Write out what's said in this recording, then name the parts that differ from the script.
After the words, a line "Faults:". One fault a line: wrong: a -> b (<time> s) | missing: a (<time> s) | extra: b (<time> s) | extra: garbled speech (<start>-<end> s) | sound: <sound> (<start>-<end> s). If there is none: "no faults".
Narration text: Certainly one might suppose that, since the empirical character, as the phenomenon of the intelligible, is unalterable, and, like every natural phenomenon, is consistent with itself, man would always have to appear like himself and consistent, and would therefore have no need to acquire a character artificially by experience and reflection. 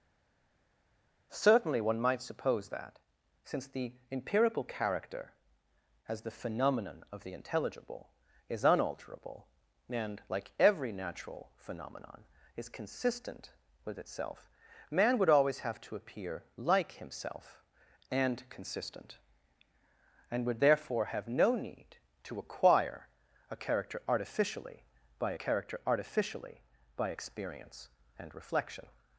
Certainly one might suppose that, since the empirical character, as the phenomenon of the intelligible, is unalterable, and, like every natural phenomenon, is consistent with itself, man would always have to appear like himself and consistent, and would therefore have no need to acquire a character artificially by character artificially by experience and reflection.
Faults:
extra: character artificially by (25.4 s)